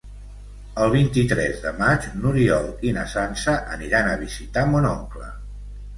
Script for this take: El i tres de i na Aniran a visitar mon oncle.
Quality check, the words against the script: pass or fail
fail